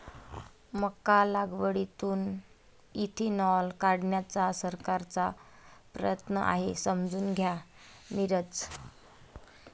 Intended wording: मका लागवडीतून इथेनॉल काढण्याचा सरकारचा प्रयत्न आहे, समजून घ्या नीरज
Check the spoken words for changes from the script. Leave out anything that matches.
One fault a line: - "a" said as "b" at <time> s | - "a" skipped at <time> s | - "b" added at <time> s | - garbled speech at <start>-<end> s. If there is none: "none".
none